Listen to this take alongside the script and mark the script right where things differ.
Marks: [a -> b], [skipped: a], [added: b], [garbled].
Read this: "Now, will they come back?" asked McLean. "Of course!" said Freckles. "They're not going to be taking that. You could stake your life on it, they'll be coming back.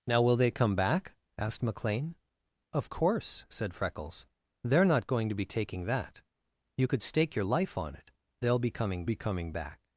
"Now, will they come back?" asked McLean. "Of course!" said Freckles. "They're not going to be taking that. You could stake your life on it, they'll be coming [added: be coming] back.